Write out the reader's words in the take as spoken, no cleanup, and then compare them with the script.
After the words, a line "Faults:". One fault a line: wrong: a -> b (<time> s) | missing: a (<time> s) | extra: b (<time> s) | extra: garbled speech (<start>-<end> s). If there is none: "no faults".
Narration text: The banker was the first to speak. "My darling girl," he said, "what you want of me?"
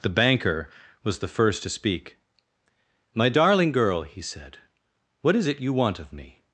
The banker was the first to speak. "My darling girl," he said, "what is it you want of me?"
Faults:
extra: is it (5.3 s)